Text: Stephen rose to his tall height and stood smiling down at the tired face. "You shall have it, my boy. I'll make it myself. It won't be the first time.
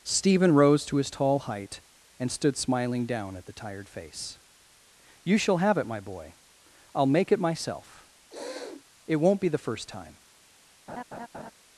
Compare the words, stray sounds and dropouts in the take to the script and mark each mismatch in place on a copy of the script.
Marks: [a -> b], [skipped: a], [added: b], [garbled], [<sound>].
Stephen rose to his tall height and stood smiling down at the tired face. "You shall have it, my boy. I'll make it myself. [sniff] It won't be the first time. [laugh]